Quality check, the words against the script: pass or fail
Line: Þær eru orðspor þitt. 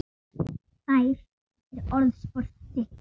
pass